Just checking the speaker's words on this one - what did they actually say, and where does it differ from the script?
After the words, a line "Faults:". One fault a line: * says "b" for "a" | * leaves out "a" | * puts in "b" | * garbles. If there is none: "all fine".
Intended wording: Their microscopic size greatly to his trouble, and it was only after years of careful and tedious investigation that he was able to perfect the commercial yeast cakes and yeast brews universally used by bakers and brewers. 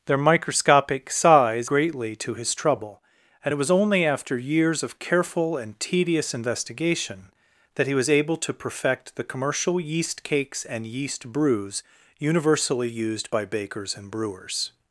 Their microscopic size greatly to his trouble, and it was only after years of careful and tedious investigation that he was able to perfect the commercial yeast cakes and yeast brews universally used by bakers and brewers.
Faults:
all fine